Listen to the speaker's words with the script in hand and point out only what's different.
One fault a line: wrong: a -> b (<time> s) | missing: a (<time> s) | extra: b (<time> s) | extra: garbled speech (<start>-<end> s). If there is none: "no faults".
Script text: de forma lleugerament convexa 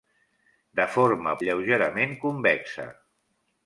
no faults